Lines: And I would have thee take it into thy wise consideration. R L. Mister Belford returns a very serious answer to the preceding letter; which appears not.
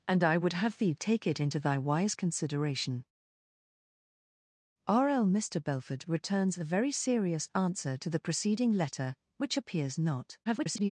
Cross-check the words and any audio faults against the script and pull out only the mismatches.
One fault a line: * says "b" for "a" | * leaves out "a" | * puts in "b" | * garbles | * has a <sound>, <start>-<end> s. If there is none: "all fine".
* garbles